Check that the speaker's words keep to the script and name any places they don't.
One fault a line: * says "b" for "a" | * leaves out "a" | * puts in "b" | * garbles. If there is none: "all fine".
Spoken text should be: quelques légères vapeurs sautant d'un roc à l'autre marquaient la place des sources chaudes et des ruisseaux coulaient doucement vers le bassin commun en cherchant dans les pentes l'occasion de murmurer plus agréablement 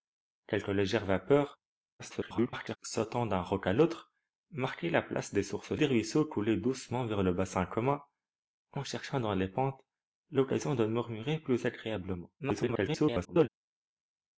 * garbles
* leaves out "chaudes et"
* garbles